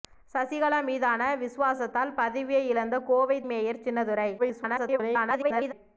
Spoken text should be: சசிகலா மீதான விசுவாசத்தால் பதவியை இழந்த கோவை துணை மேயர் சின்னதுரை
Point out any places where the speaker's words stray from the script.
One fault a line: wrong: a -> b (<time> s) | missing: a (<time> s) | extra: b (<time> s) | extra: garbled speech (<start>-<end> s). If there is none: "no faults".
missing: துணை (3.4 s)
extra: garbled speech (4.4-5.7 s)